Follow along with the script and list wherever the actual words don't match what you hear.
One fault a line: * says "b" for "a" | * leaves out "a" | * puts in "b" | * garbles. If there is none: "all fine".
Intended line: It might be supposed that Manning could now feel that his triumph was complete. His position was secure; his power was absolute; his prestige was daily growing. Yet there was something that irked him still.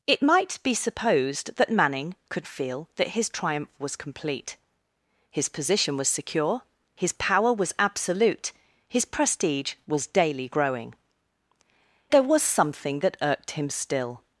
* leaves out "now"
* leaves out "Yet"